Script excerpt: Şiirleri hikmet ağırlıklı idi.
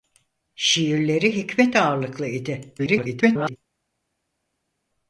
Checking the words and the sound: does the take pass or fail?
fail